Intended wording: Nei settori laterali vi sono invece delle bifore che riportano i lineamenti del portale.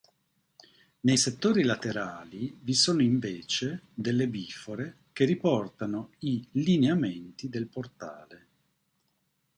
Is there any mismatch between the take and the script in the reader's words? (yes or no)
no